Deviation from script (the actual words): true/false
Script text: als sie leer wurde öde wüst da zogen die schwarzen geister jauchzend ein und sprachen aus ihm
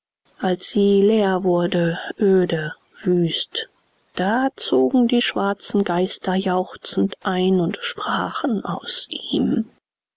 false